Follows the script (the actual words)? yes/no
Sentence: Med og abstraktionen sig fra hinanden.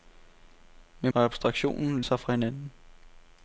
yes